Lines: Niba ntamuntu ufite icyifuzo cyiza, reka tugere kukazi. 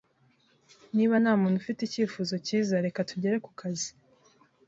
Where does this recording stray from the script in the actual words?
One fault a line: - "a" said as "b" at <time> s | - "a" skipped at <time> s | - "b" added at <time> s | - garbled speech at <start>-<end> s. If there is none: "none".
none